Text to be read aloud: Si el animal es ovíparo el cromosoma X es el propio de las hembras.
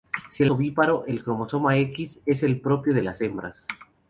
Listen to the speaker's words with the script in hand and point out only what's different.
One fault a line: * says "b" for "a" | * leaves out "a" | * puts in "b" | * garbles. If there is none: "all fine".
* leaves out "animal es"